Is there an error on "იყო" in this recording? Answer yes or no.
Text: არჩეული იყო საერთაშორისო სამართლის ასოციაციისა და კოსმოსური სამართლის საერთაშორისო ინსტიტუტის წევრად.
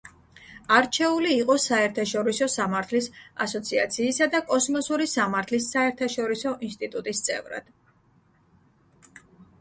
no